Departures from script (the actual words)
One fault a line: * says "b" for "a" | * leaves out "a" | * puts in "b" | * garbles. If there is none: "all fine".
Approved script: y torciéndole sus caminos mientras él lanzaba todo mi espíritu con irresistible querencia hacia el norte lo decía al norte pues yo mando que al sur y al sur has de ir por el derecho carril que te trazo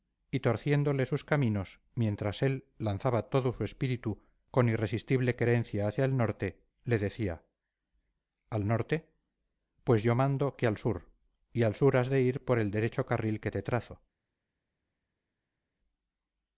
* says "su" for "mi"
* says "le" for "lo"